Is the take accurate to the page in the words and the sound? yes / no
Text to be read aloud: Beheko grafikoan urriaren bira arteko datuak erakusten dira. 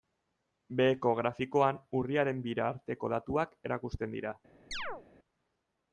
no